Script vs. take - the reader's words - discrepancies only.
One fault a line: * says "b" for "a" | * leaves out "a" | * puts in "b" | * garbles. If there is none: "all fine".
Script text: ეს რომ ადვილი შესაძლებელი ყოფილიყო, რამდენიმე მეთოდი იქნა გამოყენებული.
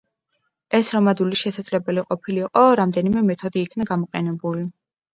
all fine